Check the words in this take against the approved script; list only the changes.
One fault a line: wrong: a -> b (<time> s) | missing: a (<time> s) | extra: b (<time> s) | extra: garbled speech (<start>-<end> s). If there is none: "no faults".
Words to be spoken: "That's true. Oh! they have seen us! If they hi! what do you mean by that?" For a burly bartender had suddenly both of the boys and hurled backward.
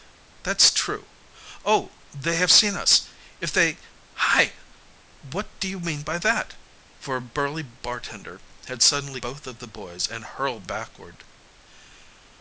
no faults